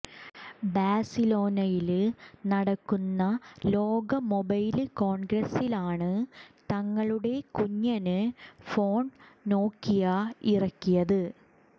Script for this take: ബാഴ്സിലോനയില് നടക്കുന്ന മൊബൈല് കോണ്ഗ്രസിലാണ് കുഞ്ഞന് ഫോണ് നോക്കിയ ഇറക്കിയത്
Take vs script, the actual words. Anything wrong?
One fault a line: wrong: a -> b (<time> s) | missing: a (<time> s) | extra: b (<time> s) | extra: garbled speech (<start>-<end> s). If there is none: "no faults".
extra: ലോക (3.7 s)
extra: തങ്ങളുടെ (6.7 s)